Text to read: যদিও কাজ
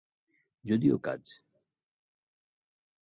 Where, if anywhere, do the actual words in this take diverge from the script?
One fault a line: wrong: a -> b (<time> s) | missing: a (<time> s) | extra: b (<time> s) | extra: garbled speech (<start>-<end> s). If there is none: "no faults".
no faults